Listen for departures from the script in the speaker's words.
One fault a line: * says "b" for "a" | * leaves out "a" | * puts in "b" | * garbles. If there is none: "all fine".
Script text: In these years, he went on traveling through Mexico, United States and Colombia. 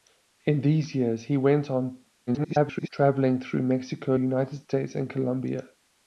* garbles